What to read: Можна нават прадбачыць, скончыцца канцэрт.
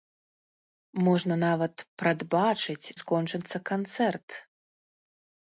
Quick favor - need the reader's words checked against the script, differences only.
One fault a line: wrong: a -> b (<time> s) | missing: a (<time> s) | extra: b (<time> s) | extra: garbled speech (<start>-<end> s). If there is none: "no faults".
no faults